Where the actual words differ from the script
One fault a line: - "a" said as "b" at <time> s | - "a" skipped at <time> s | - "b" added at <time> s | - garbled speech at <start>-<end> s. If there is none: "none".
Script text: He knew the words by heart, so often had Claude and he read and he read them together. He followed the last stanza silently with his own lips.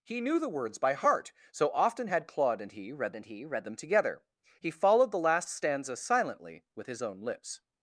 none